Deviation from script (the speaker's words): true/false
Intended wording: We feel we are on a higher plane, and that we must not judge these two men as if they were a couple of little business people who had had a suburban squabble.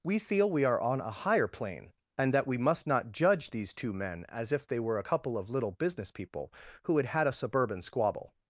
false